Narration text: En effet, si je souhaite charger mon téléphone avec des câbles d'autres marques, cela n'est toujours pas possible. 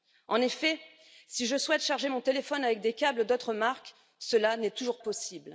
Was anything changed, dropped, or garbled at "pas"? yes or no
yes